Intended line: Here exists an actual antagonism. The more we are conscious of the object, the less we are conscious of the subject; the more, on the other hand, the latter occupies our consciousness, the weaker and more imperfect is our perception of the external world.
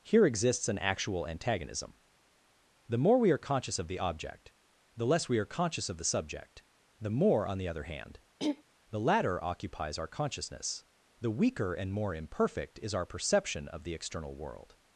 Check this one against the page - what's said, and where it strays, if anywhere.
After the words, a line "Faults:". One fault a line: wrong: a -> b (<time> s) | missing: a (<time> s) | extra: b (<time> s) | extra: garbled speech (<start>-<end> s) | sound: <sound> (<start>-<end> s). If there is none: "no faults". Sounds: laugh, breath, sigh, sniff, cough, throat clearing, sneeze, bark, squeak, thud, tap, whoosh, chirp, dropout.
Here exists an actual antagonism. The more we are conscious of the object, the less we are conscious of the subject; the more, on the other hand, the latter occupies our consciousness, the weaker and more imperfect is our perception of the external world.
Faults:
sound: throat clearing (8.4-8.6 s)